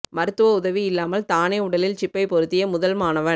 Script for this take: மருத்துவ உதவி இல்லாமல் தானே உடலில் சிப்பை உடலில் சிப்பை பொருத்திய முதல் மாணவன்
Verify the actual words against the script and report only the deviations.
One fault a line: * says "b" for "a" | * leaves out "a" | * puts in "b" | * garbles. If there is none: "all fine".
* leaves out "உடலில் சிப்பை"